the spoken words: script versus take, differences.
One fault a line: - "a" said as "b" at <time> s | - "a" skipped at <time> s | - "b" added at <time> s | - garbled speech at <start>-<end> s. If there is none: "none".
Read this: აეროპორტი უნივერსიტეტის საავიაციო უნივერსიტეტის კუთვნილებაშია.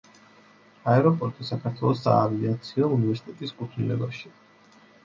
- "უნივერსიტეტის" said as "საქართველოს" at 1.5 s